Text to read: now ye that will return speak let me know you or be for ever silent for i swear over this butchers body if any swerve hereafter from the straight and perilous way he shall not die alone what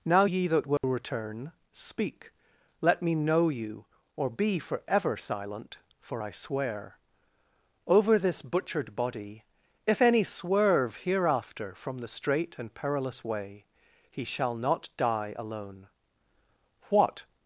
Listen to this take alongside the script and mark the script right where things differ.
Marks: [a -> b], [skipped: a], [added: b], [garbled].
now ye that will return speak let me know you or be for ever silent for i swear over this [butchers -> butchered] body if any swerve hereafter from the straight and perilous way he shall not die alone what